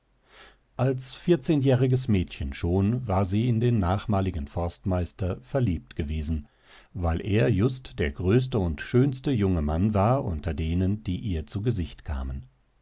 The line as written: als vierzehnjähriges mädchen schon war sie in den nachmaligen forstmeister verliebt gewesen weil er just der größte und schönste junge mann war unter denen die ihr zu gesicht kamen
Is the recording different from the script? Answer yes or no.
no